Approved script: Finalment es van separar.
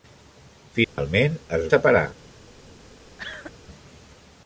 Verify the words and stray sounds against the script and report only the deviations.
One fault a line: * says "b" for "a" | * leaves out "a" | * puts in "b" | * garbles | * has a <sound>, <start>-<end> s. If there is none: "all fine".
* has a dropout, 0.8-1.0 s
* leaves out "van"
* has a cough, 3.2-3.5 s